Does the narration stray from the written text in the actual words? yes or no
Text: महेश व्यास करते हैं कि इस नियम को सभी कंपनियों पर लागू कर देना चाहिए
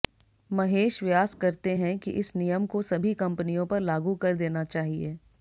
no